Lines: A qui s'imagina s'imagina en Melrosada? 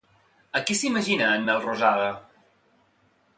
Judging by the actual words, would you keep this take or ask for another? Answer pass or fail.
fail